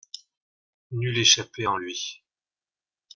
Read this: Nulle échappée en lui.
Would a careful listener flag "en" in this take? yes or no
no